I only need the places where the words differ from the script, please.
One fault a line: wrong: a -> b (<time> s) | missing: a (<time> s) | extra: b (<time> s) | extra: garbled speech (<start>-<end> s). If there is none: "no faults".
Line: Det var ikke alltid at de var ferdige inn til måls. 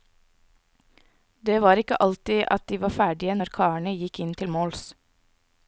extra: når karene gikk (3.4 s)